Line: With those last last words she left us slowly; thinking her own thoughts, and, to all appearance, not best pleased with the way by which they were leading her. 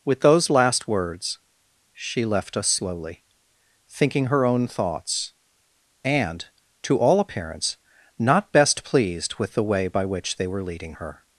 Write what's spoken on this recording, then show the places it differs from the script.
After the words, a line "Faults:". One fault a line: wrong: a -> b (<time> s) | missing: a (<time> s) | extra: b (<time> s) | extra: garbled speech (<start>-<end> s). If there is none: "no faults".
With those last words she left us slowly; thinking her own thoughts, and, to all appearance, not best pleased with the way by which they were leading her.
Faults:
missing: last (0.9 s)